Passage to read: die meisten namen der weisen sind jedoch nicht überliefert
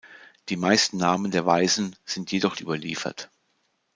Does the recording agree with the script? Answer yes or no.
no